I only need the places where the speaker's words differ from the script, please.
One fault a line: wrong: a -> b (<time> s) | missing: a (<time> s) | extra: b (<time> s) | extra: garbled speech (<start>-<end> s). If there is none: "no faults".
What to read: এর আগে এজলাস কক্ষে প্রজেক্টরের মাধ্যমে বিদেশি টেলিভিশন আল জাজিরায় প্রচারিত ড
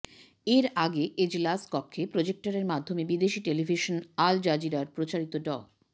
no faults